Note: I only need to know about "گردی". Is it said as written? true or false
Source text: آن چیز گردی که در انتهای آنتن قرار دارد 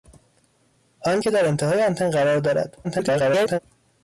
false